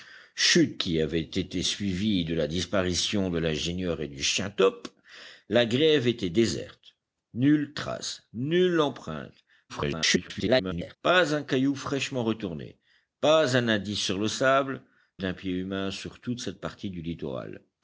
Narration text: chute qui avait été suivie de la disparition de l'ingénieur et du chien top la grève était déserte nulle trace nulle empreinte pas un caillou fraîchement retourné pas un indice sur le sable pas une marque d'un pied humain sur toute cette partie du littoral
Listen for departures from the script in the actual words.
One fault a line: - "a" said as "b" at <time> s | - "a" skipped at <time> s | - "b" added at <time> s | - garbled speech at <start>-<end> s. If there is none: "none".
- garbled speech at 9.7-11.0 s
- "pas une marque" skipped at 14.8 s